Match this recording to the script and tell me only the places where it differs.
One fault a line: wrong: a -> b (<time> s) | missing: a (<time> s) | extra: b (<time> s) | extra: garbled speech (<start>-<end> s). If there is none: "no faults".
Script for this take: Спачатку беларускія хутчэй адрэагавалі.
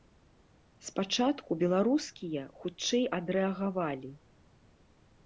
no faults